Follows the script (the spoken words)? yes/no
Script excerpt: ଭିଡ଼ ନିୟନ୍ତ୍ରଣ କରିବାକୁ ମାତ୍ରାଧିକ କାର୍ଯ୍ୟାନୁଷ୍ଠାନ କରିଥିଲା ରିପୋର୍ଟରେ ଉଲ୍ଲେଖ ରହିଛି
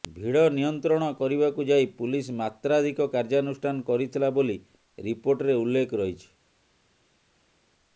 no